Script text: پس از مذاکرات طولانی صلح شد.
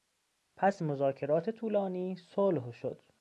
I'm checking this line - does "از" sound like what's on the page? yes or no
no